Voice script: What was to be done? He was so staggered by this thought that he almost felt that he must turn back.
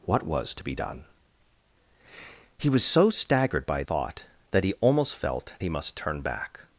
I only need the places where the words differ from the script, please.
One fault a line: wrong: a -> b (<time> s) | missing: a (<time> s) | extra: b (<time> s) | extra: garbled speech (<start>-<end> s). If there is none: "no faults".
missing: this (3.8 s)
missing: that (5.5 s)